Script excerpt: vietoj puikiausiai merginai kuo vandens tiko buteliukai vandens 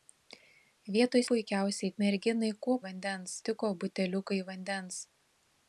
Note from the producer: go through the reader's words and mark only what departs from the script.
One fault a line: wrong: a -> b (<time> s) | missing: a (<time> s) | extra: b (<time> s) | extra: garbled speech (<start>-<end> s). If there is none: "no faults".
no faults